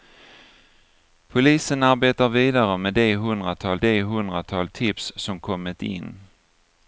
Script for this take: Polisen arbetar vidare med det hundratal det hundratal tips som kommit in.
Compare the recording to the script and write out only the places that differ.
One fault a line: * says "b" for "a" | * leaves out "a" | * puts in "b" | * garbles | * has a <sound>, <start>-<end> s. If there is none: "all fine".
all fine